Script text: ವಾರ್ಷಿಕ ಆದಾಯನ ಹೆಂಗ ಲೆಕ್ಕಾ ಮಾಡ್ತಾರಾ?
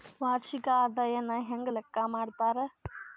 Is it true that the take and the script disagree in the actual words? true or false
false